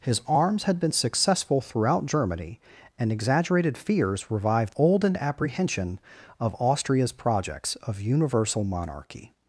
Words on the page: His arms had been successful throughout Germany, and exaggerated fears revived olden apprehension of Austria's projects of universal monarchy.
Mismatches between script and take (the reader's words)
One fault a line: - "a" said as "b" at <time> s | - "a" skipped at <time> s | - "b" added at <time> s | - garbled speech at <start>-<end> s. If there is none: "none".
none